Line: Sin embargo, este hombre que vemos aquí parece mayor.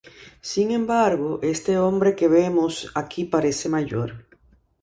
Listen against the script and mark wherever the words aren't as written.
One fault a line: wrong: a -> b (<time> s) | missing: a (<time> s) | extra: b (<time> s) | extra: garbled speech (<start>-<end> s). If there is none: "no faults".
no faults